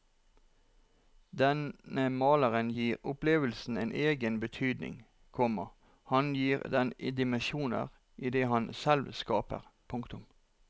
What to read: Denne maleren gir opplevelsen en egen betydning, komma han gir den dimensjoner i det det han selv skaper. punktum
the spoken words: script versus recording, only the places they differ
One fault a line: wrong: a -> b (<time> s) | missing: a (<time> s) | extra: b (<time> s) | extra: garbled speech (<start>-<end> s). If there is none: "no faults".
missing: det (8.5 s)